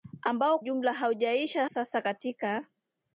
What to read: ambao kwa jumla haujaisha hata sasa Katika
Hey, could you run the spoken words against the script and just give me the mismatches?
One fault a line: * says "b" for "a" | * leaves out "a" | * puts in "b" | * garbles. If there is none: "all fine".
* leaves out "kwa"
* leaves out "hata"